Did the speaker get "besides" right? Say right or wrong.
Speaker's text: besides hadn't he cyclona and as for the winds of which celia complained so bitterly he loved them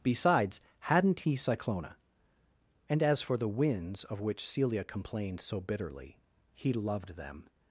right